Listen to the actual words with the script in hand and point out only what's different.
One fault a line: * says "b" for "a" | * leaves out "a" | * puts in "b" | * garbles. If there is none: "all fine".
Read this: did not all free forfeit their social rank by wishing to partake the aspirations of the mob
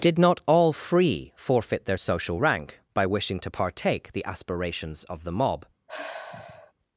all fine